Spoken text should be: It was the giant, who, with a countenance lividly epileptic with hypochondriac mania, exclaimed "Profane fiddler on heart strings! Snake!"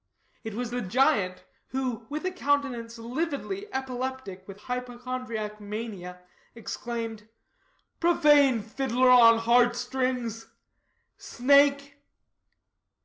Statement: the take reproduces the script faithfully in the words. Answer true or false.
true